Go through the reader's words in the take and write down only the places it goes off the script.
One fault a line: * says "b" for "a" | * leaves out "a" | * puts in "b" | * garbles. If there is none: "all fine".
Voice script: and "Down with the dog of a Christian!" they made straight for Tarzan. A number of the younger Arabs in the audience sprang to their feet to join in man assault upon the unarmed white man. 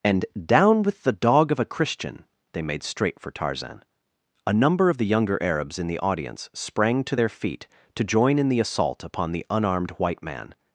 * says "the" for "man"